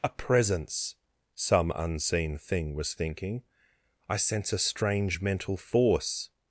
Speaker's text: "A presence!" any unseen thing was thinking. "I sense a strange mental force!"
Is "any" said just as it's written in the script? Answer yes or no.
no